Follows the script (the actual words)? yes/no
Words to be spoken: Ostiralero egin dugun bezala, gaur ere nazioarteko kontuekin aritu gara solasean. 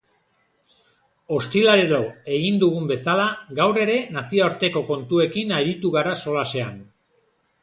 yes